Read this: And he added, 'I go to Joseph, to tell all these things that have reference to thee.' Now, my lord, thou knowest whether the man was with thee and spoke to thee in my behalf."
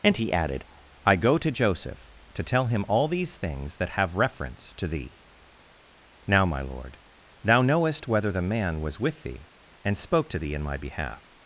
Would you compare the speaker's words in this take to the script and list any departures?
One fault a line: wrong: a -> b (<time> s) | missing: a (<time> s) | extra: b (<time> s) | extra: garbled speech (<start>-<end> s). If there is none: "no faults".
extra: him (2.7 s)